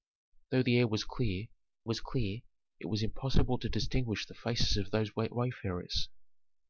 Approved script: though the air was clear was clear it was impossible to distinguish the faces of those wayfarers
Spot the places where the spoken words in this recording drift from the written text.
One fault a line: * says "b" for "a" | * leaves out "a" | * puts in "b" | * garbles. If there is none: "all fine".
all fine